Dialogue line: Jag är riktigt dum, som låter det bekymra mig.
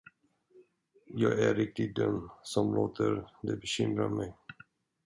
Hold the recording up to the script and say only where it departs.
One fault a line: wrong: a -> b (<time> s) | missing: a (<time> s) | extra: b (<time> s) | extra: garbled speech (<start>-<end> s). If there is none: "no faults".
no faults